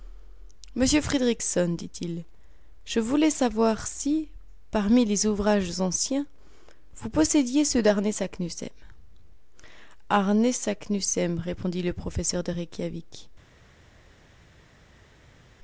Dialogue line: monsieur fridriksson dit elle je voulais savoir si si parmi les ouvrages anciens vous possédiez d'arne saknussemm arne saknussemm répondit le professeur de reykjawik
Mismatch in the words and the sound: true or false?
true